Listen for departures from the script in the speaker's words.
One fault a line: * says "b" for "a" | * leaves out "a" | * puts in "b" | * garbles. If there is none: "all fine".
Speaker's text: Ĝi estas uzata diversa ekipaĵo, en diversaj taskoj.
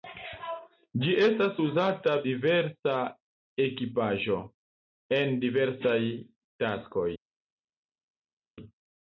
all fine